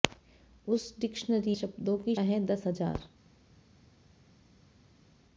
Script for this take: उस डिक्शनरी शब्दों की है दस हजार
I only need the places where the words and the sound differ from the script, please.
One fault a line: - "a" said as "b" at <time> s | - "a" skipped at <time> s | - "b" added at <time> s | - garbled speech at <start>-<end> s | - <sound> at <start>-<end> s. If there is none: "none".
none